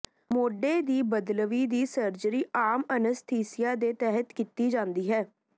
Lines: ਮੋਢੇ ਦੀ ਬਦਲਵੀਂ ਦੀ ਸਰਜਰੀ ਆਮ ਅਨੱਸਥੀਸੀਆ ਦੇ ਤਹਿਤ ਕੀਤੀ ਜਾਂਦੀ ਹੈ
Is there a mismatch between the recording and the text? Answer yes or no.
no